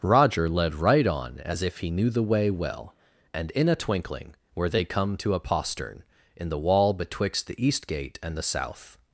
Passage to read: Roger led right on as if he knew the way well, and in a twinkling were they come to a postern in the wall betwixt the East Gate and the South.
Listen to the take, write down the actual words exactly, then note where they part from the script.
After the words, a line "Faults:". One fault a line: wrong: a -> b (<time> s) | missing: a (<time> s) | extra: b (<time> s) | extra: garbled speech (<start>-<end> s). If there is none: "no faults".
Roger led right on as if he knew the way well, and in a twinkling were they come to a postern in the wall betwixt the East Gate and the South.
Faults:
no faults